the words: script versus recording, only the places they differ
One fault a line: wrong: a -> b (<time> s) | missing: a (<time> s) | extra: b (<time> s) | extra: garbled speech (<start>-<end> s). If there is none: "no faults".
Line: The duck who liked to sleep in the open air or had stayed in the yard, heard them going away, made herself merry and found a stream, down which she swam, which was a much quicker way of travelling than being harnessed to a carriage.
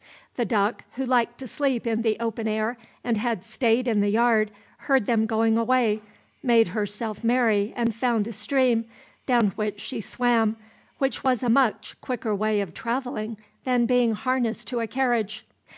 wrong: or -> and (3.0 s)